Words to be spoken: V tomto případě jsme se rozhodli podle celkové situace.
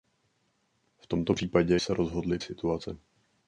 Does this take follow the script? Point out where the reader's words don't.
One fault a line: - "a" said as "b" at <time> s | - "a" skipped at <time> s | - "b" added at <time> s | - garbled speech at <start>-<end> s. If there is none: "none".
- "jsme" skipped at 1.8 s
- "podle celkové" skipped at 2.4 s